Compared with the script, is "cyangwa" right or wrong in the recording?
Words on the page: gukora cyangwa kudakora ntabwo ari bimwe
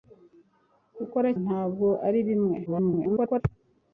wrong